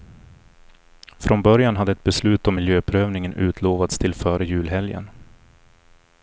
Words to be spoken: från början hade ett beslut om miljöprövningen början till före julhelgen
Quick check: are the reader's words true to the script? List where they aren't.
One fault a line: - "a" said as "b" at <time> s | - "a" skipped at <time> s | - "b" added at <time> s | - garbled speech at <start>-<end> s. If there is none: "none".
- "början" said as "utlovats" at 3.3 s